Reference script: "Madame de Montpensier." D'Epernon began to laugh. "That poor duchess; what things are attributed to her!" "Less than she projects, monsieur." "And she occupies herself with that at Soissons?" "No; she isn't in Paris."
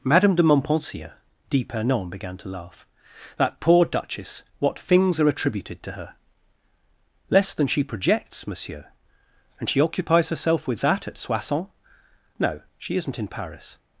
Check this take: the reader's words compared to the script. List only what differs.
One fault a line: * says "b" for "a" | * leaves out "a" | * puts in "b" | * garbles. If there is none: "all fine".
all fine